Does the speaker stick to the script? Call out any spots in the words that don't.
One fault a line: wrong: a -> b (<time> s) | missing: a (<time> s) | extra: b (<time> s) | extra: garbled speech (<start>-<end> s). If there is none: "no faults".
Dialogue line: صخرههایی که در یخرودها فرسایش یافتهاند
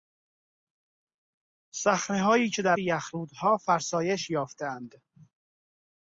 no faults